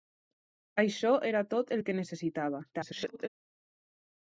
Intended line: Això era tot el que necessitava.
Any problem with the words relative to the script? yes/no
yes